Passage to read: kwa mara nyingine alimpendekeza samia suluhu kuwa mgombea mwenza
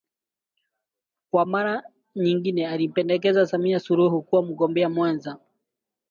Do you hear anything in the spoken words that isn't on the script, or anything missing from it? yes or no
no